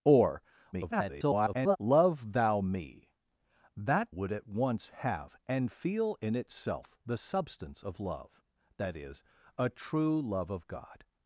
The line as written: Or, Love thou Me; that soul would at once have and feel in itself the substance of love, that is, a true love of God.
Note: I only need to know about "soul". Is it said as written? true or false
false